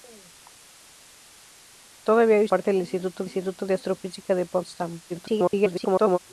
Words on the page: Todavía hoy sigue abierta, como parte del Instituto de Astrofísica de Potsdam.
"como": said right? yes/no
no